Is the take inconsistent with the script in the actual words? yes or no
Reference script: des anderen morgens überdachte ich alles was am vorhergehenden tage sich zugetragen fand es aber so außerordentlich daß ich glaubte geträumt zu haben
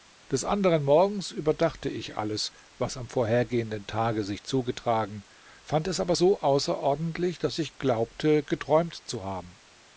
no